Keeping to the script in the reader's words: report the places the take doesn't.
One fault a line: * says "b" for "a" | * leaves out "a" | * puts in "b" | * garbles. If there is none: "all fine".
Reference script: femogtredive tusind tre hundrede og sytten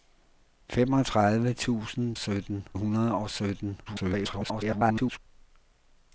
* says "sytten" for "tre"
* garbles